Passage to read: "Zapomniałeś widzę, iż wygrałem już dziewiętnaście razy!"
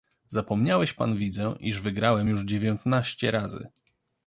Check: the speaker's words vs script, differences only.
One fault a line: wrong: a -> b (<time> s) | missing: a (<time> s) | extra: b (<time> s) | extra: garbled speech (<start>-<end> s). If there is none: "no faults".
extra: pan (0.9 s)